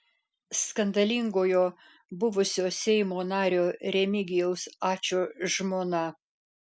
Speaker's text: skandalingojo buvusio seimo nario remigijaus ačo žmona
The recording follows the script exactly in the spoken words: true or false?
true